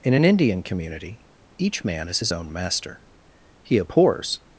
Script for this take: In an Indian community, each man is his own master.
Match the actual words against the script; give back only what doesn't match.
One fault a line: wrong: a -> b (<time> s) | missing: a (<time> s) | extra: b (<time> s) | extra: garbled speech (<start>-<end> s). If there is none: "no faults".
extra: He abhors (3.6 s)